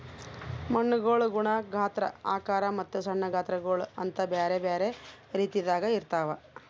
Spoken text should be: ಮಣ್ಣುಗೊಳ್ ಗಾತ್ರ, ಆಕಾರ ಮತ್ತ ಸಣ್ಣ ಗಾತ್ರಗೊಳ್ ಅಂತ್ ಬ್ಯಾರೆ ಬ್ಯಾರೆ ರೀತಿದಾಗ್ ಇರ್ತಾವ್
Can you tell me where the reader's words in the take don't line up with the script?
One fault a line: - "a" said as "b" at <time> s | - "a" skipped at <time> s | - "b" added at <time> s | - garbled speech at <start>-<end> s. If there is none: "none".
- "ಗುಣ" added at 1.3 s